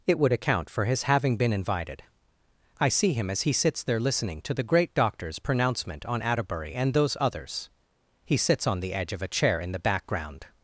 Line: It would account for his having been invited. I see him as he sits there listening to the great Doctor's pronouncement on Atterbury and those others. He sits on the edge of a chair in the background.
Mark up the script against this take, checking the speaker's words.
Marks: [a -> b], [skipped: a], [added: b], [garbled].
It would account for his having been invited. I see him as he sits there listening to the great Doctor's pronouncement on Atterbury and those others. He sits on the edge of a chair in the background.